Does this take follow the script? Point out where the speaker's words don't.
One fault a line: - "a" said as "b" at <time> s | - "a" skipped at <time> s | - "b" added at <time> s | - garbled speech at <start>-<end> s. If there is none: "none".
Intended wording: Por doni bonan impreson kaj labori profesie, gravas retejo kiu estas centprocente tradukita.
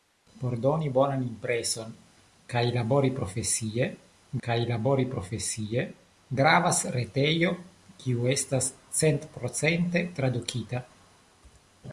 - "kaj labori profesie" added at 4.5 s